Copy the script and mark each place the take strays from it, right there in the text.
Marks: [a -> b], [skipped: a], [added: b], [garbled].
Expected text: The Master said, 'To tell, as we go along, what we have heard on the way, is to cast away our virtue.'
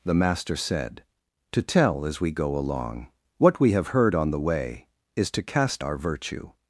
The Master said, 'To tell, as we go along, what we have heard on the way, is to cast [skipped: away] our virtue.'